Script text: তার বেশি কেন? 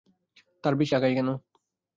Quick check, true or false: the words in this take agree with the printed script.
false